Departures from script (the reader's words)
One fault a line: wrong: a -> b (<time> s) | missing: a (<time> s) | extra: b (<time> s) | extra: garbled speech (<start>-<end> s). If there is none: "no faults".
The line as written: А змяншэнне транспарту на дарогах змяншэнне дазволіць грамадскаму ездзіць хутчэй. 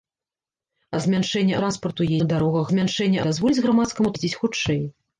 no faults